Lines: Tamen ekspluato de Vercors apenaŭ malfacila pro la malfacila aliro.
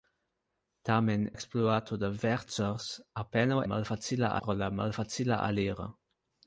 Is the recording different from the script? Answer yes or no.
no